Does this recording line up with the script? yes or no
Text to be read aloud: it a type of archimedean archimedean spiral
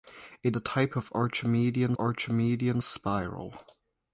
yes